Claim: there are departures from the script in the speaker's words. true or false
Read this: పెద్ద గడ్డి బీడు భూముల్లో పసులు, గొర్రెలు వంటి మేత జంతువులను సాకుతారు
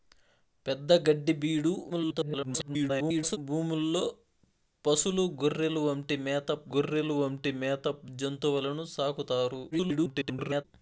true